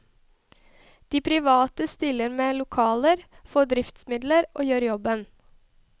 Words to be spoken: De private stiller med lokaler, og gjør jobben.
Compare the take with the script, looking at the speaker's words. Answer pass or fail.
fail